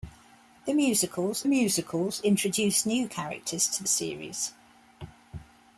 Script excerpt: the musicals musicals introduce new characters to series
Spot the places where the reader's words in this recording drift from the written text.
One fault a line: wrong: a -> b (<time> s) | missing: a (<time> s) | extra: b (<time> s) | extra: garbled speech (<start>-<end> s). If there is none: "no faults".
no faults